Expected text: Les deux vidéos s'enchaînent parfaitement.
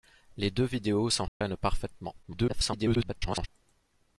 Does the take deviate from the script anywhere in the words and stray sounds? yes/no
yes